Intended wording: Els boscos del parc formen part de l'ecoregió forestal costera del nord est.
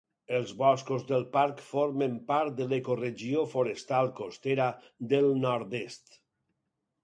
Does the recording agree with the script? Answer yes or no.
yes